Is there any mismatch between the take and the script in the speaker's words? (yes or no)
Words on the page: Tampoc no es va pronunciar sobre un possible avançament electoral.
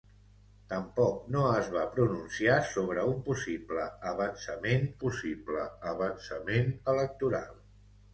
yes